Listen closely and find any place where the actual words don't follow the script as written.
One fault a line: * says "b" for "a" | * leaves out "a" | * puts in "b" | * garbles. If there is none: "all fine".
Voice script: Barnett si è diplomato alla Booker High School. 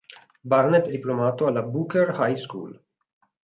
* leaves out "si"